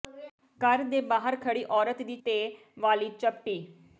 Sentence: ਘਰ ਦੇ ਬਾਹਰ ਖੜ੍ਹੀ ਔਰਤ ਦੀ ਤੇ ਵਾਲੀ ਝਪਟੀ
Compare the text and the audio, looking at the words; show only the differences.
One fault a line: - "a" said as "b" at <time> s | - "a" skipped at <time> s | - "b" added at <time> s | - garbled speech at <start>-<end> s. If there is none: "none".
none